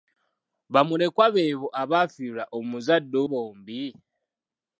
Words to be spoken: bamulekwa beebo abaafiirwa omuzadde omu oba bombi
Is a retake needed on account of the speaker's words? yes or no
yes